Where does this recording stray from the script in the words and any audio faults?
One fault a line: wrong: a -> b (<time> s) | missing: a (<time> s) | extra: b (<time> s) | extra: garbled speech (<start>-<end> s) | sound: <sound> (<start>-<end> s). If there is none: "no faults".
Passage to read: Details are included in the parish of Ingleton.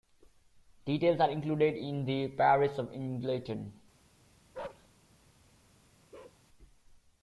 sound: bark (4.5-4.9 s)
sound: bark (6.1-6.4 s)